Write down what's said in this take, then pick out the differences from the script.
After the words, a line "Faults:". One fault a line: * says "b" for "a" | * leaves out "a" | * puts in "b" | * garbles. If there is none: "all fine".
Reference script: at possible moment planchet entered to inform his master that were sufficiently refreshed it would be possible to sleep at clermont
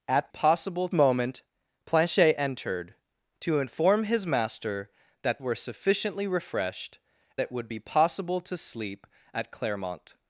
at possible moment planchet entered to inform his master that were sufficiently refreshed it would be possible to sleep at clermont
Faults:
all fine